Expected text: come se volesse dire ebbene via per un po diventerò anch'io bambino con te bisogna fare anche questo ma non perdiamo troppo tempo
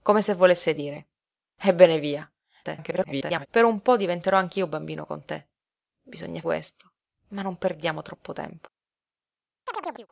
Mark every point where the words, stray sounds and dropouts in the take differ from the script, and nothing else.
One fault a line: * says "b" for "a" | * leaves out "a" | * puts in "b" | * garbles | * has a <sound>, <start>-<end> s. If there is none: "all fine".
* garbles
* leaves out "fare anche"
* has a chirp, 9.7-10.1 s